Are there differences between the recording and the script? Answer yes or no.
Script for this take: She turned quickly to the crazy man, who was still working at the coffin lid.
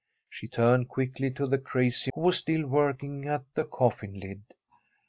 yes